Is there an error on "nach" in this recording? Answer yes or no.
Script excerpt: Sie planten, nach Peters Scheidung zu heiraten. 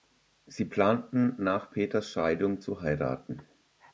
no